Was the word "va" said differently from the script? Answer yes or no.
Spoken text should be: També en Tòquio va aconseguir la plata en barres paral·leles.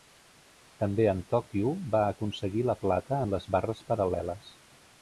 no